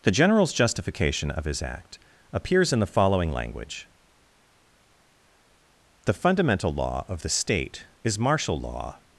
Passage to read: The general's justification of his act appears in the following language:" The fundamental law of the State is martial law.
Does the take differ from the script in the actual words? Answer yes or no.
no